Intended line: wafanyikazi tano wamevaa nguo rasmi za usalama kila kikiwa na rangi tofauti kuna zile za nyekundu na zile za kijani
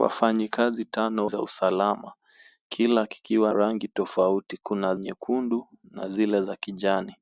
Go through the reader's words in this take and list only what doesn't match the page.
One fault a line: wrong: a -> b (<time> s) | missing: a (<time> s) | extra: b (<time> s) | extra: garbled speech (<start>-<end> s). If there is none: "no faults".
missing: wamevaa nguo rasmi (1.3 s)
missing: na (3.5 s)
missing: zile za (5.0 s)